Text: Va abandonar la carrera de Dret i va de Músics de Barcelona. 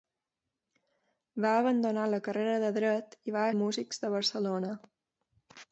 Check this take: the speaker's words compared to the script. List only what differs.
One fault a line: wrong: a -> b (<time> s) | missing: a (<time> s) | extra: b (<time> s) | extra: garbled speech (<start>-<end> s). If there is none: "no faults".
no faults